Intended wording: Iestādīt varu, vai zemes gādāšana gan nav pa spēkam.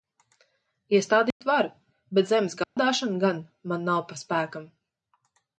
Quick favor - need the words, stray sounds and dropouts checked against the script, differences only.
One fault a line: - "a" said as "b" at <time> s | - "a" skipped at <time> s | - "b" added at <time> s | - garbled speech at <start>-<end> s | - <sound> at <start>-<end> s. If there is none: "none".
- dropout at 1.3-1.4 s
- "vai" said as "bet" at 2.2 s
- dropout at 2.6-2.8 s
- "man" added at 3.7 s